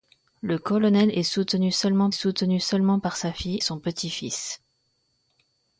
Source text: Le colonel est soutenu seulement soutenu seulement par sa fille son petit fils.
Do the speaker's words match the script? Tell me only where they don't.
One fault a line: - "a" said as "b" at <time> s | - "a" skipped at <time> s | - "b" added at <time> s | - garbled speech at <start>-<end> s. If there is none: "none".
none